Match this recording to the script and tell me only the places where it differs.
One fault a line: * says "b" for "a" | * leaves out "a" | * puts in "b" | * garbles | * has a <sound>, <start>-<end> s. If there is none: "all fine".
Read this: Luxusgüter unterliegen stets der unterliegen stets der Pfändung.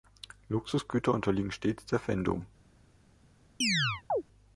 * leaves out "unterliegen stets der"
* has a chirp, 3.6-4.2 s